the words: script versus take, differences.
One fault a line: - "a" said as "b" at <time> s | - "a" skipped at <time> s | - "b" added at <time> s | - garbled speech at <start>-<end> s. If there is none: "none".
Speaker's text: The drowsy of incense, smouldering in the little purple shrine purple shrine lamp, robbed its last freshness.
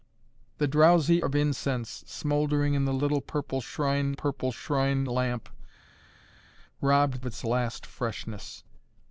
none